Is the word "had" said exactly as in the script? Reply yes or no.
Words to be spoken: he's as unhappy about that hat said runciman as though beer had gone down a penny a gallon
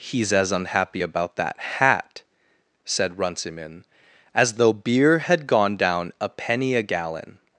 yes